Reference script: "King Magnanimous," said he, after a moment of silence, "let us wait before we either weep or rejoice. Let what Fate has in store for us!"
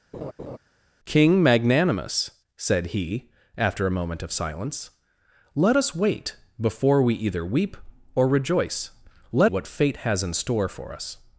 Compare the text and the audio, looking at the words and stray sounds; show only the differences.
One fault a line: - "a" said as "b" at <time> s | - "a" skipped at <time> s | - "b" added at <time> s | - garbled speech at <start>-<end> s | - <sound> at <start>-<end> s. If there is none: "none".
- laugh at 0.1-0.6 s